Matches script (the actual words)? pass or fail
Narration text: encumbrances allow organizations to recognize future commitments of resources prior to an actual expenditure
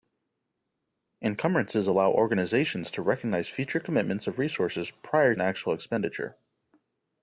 fail